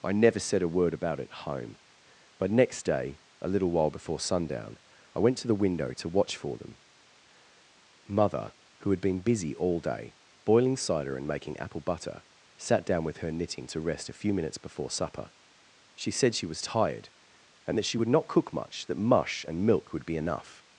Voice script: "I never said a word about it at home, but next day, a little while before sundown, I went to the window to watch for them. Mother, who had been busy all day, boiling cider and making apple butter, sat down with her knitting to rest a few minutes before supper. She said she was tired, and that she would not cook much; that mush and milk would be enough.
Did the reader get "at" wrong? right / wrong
wrong